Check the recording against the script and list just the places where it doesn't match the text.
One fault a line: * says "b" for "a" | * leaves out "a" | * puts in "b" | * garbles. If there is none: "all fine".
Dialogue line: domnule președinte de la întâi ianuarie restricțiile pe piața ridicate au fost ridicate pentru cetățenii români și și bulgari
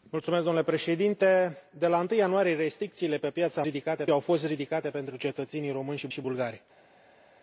all fine